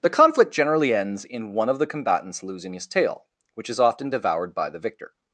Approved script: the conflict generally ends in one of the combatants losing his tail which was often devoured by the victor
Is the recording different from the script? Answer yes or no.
yes